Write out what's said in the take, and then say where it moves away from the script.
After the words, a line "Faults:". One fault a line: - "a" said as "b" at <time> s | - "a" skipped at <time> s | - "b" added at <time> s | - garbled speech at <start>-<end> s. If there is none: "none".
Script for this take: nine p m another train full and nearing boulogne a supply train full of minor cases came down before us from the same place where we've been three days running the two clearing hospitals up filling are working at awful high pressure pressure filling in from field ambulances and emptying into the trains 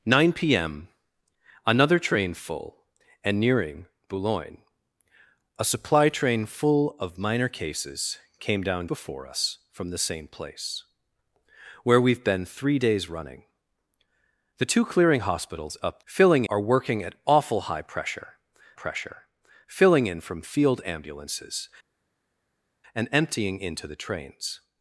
nine p m another train full and nearing boulogne a supply train full of minor cases came down before us from the same place where we've been three days running the two clearing hospitals up filling are working at awful high pressure pressure filling in from field ambulances and emptying into the trains
Faults:
none